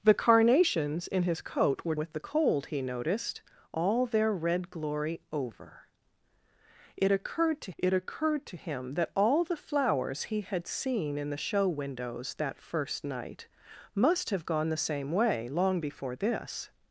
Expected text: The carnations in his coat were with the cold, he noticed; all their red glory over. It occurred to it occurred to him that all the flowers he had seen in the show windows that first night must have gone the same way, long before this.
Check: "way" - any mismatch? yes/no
no